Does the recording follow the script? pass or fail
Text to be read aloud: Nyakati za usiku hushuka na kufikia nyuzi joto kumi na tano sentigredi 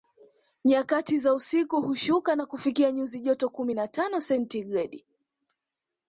pass